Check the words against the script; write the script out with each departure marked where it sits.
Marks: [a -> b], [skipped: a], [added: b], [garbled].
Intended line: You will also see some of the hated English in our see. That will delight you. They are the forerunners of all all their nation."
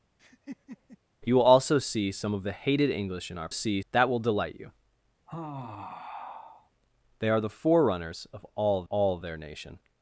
You will also see some of the hated English in our see. That will delight you. They are the forerunners of all all their nation."